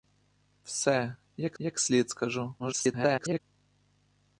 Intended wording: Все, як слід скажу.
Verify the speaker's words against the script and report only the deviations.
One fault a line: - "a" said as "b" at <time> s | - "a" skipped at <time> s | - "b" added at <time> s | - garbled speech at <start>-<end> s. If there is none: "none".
- "як" added at 1.6 s
- garbled speech at 2.6-3.4 s